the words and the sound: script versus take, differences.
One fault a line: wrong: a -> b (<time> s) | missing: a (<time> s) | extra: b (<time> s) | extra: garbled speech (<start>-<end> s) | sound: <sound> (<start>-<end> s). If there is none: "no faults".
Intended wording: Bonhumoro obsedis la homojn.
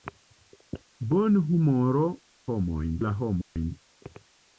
wrong: obsedis -> homojn (2.5 s)
sound: dropout (3.4-3.6 s)